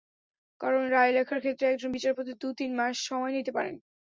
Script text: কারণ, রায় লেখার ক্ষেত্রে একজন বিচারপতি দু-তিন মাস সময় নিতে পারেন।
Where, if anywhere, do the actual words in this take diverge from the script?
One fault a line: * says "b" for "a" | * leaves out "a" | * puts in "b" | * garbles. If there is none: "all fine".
all fine